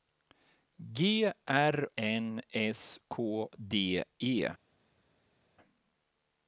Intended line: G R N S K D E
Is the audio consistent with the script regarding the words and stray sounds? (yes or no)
yes